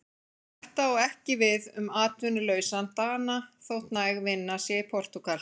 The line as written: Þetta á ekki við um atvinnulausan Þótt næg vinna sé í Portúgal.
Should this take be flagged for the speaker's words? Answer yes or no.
yes